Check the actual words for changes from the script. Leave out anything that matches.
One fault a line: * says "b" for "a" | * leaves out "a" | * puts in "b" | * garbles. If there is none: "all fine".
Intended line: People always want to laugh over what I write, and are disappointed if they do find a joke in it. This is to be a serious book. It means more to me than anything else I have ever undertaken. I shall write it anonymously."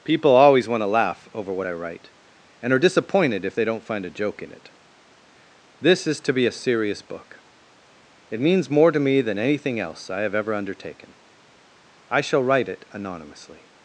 * says "don't" for "do"